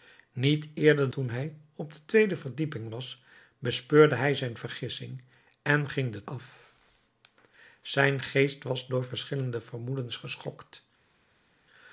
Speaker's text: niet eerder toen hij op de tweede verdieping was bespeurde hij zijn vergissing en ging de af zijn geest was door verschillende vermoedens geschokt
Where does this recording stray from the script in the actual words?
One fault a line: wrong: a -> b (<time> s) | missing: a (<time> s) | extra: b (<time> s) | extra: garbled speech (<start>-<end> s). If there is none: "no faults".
no faults